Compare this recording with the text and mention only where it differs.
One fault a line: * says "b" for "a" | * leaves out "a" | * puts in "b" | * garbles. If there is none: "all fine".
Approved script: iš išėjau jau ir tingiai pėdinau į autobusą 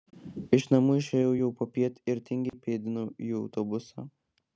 * puts in "namų"
* puts in "popiet"